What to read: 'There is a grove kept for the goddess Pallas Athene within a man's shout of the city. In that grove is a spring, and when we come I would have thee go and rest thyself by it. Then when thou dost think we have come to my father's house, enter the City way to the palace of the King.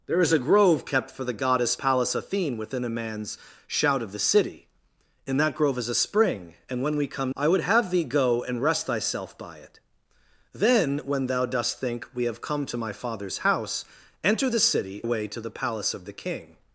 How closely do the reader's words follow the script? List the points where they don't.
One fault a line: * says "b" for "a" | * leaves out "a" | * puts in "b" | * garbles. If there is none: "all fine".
all fine